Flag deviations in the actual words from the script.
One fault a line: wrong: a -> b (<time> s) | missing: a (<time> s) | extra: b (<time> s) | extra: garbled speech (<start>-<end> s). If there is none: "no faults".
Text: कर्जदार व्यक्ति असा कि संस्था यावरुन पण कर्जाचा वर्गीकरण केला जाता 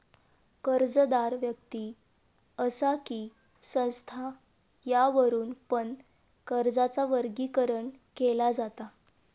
no faults